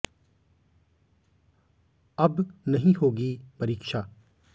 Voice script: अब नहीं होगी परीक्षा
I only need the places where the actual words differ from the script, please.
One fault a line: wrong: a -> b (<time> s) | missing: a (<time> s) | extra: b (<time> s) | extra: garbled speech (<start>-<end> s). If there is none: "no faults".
no faults